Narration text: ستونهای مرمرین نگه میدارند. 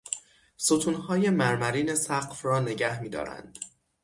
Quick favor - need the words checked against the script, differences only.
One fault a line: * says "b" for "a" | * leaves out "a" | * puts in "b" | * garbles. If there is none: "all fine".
* puts in "سقف را"